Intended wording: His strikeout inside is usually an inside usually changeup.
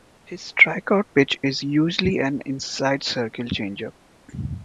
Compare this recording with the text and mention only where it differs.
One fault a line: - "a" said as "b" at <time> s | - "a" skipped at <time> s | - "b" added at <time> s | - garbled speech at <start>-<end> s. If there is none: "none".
- "inside" said as "pitch" at 1.1 s
- "usually" said as "circle" at 3.0 s